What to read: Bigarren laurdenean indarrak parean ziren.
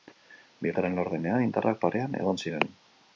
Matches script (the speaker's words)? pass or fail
fail